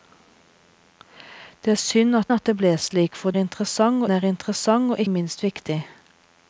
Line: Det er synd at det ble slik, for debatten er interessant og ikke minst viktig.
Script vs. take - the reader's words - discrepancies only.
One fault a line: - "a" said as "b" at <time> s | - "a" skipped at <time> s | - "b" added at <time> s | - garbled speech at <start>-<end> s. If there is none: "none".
- "at" added at 2.3 s
- "debatten" said as "interessant" at 3.4 s
- "ikke" skipped at 5.0 s